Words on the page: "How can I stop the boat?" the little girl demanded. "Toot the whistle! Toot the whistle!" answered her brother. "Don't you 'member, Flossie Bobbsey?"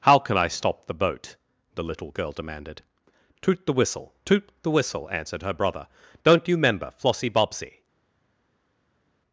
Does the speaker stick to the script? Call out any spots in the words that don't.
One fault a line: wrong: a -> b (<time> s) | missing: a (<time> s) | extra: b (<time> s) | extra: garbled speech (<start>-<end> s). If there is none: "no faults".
no faults